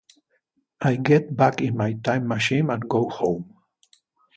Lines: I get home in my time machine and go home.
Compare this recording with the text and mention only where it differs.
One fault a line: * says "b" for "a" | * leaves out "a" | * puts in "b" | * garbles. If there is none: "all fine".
* says "back" for "home"